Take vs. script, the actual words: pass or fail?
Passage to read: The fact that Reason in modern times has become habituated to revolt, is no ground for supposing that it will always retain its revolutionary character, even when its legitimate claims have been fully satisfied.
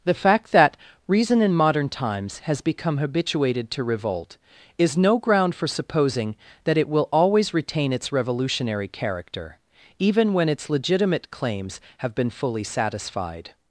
pass